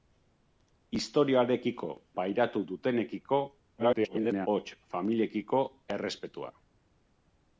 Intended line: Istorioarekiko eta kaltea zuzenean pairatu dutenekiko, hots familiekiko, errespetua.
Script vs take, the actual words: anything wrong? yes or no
yes